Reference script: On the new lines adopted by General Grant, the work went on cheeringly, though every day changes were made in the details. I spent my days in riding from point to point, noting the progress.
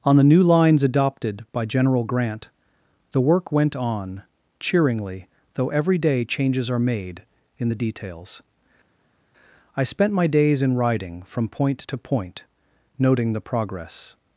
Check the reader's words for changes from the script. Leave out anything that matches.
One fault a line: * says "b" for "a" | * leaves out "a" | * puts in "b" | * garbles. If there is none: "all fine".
* says "are" for "were"